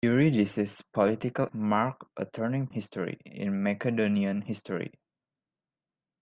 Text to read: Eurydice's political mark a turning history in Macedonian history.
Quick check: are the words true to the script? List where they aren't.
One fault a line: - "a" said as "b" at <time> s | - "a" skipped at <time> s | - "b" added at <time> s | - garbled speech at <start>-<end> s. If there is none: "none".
none